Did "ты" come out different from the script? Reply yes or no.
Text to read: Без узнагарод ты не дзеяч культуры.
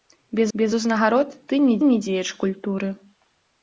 no